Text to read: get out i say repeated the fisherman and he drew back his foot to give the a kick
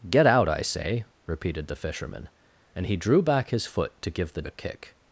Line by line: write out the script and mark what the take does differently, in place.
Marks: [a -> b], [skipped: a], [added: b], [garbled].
get out i say repeated the fisherman and he drew back his foot to give the a kick